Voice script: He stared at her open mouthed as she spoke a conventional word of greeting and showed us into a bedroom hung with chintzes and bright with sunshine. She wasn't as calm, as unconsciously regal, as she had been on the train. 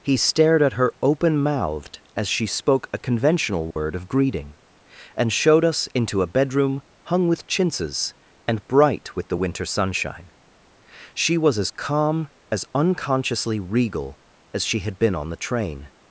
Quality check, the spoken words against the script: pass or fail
fail